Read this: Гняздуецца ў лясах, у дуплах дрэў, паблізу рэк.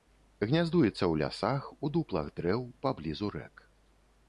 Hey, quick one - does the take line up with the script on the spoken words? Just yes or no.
yes